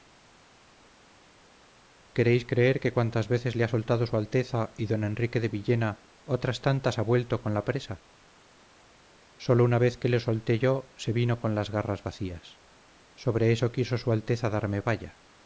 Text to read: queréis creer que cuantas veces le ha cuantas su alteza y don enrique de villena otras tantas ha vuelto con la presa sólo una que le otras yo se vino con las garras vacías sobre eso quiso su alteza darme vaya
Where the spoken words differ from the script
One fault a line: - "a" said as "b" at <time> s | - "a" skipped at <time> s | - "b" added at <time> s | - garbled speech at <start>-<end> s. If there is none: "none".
- "cuantas" said as "soltado" at 3.7 s
- "vez" added at 9.8 s
- "otras" said as "solté" at 10.2 s